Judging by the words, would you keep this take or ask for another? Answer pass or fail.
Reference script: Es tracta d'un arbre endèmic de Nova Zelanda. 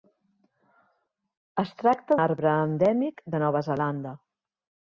fail